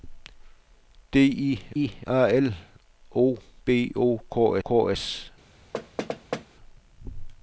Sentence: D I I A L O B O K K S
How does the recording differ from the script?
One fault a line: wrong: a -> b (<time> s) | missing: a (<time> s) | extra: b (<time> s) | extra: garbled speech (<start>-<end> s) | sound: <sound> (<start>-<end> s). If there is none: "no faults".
sound: thud (5.7-6.5 s)